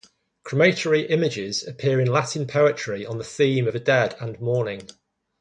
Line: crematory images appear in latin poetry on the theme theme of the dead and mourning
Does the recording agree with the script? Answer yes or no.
no